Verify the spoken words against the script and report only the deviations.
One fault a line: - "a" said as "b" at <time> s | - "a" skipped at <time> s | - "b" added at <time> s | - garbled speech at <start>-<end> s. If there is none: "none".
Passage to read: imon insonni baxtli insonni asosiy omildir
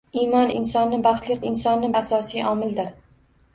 none